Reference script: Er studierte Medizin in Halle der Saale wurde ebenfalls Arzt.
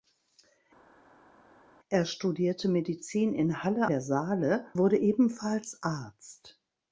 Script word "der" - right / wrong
right